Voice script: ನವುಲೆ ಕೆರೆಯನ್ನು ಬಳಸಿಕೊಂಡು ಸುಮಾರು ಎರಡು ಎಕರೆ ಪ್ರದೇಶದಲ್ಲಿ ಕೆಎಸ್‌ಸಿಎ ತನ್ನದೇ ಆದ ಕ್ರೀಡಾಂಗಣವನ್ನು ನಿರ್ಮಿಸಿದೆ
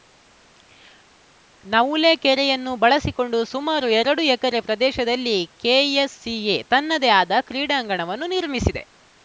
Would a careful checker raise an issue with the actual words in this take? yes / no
no